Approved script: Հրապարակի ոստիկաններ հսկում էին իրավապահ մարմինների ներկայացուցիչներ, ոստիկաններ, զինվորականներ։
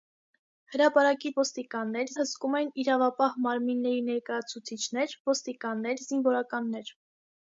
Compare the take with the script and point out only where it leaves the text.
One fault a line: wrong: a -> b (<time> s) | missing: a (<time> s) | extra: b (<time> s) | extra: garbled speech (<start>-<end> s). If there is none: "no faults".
no faults